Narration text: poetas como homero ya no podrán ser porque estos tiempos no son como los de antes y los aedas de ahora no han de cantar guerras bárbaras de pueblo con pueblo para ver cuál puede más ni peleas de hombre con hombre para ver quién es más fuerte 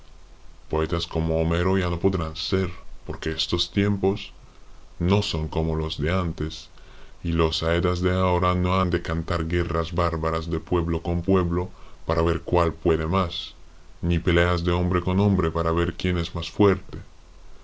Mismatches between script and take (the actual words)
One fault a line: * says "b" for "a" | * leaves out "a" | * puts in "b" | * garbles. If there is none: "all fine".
all fine